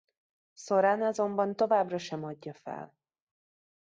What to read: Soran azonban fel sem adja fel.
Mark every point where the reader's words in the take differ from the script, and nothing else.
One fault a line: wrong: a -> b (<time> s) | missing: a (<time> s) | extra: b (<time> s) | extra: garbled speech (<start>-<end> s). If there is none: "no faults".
wrong: fel -> továbbra (1.6 s)